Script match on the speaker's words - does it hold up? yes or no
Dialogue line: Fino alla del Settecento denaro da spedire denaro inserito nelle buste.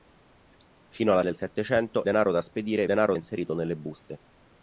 yes